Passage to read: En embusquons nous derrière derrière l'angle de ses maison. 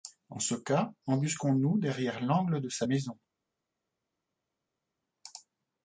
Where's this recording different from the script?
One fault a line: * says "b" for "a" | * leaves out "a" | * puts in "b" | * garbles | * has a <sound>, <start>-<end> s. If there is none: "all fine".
* puts in "ce cas"
* leaves out "derrière"
* says "sa" for "ses"